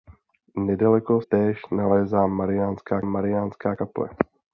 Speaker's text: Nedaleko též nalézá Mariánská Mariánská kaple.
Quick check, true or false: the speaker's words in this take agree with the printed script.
true